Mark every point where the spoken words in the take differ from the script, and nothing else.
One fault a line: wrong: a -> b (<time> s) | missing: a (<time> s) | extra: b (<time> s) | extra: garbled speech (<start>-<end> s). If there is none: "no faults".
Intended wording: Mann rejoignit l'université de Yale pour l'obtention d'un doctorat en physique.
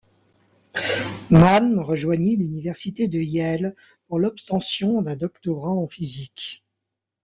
no faults